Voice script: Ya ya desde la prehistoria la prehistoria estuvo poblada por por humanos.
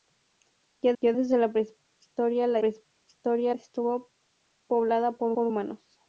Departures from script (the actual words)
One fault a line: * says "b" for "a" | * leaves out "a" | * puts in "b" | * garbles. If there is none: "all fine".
all fine